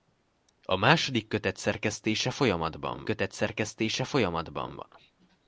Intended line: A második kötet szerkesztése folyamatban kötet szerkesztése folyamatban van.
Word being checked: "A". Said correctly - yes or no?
yes